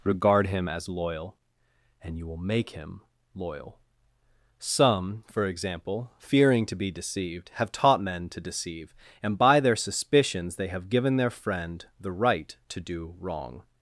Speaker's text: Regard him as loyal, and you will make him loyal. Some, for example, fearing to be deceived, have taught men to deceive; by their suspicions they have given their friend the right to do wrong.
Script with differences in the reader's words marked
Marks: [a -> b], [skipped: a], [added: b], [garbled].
Regard him as loyal, and you will make him loyal. Some, for example, fearing to be deceived, have taught men to deceive; [added: and] by their suspicions they have given their friend the right to do wrong.